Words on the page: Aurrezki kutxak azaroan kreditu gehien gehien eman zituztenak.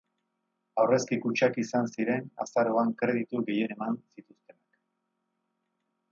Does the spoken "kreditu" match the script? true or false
true